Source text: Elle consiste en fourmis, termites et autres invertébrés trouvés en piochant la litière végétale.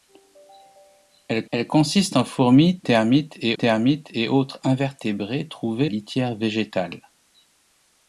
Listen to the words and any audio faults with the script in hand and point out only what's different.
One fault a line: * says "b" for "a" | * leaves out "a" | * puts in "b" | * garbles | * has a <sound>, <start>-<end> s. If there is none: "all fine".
* puts in "elle"
* puts in "termites et"
* leaves out "en piochant la"